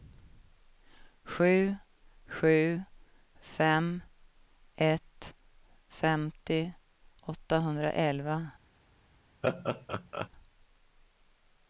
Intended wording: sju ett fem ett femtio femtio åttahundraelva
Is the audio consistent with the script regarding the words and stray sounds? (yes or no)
no